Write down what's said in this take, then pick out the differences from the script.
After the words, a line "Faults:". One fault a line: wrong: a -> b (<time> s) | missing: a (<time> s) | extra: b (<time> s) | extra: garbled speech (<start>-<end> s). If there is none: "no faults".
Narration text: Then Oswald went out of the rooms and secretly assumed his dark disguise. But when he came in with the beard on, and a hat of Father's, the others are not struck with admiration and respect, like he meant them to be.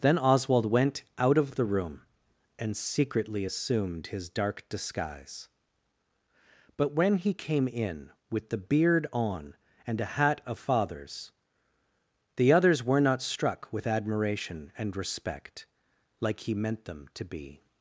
Then Oswald went out of the room and secretly assumed his dark disguise. But when he came in with the beard on, and a hat of Father's, the others were not struck with admiration and respect, like he meant them to be.
Faults:
wrong: rooms -> room (1.6 s)
wrong: are -> were (12.8 s)